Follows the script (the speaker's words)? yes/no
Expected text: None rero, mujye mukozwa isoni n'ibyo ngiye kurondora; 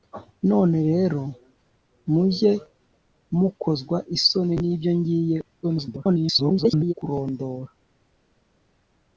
no